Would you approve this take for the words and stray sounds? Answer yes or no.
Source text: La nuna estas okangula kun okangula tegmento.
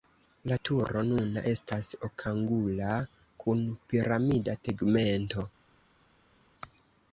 no